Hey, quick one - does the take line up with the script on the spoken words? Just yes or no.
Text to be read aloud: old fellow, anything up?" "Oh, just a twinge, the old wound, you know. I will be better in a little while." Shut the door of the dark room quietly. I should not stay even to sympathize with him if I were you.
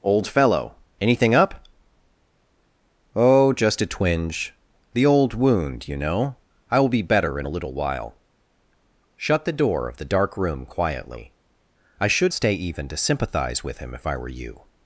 no